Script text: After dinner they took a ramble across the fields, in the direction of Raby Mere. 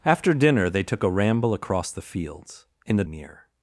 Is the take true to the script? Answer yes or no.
no